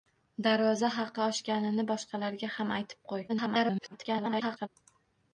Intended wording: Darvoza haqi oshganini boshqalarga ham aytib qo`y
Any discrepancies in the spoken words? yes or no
yes